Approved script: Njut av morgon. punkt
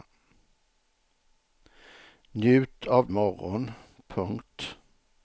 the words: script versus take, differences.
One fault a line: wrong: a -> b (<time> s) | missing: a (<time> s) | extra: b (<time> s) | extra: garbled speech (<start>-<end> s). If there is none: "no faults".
no faults